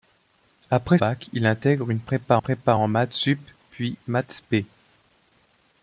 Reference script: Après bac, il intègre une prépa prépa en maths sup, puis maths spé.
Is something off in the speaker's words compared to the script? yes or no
no